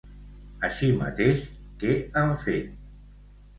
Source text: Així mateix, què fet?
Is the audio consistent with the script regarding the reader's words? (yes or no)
no